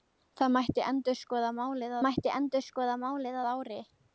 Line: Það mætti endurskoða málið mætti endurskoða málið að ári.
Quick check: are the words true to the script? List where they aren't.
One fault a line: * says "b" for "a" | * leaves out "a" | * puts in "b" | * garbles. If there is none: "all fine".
all fine